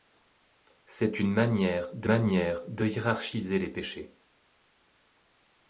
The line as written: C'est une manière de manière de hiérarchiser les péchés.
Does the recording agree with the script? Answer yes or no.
yes